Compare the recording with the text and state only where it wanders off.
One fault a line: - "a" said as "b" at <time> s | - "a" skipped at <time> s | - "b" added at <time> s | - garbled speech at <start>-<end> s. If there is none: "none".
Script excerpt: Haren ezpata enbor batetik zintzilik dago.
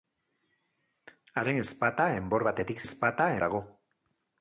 - "zintzilik" said as "ezpata" at 2.9 s